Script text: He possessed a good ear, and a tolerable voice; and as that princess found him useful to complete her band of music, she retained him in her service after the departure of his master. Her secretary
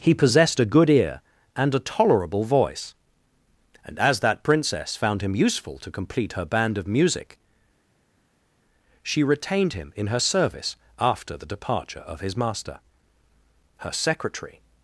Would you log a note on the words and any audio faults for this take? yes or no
no